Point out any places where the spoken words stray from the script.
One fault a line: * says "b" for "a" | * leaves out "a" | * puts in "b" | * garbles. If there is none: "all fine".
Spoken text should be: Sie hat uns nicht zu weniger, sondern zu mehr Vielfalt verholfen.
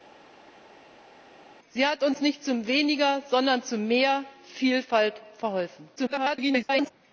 * garbles